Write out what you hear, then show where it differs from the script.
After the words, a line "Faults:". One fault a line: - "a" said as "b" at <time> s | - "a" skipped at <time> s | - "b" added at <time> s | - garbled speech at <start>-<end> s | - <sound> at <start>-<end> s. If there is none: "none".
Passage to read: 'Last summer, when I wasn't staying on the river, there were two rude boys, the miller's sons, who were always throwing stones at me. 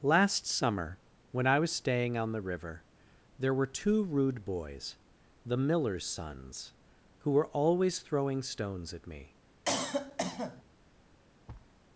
'Last summer, when I was staying on the river, there were two rude boys, the miller's sons, who were always throwing stones at me.
Faults:
- "wasn't" said as "was" at 1.6 s
- cough at 9.7-10.6 s
- thud at 11.5-11.7 s